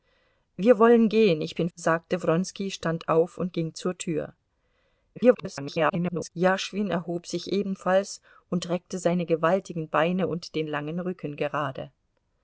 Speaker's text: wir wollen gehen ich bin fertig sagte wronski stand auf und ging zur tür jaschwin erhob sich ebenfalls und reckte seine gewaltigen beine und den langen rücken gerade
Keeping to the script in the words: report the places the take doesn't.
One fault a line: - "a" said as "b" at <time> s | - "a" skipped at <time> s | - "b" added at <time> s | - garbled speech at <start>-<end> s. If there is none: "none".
- "fertig" skipped at 1.7 s
- garbled speech at 5.2-6.3 s